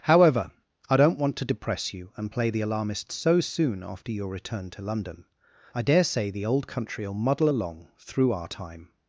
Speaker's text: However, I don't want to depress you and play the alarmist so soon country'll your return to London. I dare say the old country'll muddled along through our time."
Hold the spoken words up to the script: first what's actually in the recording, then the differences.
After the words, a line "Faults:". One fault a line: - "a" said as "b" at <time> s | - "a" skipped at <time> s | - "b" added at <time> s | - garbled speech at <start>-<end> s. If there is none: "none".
However, I don't want to depress you and play the alarmist so soon after your return to London. I dare say the old country'll muddle along through our time."
Faults:
- "country'll" said as "after" at 3.8 s
- "muddled" said as "muddle" at 7.1 s